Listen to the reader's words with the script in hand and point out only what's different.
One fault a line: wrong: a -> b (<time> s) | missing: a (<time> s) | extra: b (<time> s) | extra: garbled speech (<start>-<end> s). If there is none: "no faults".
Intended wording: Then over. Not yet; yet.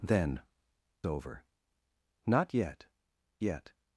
no faults